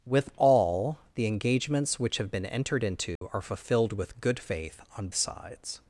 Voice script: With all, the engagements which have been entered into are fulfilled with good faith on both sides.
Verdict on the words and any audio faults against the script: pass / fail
fail